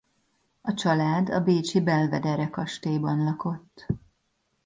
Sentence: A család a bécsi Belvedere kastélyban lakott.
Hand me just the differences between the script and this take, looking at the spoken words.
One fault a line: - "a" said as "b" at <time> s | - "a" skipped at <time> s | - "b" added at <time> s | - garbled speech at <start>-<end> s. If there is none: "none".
none